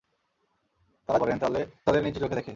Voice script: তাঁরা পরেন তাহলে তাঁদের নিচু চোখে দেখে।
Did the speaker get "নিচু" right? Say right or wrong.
right